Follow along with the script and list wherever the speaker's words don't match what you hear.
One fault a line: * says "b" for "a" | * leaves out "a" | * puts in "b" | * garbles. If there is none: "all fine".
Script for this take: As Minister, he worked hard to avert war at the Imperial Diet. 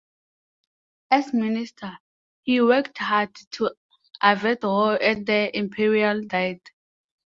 all fine